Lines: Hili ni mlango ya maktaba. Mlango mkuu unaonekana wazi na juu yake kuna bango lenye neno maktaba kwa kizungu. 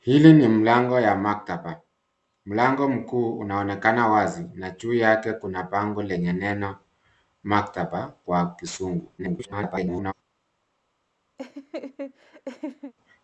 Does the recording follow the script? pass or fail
fail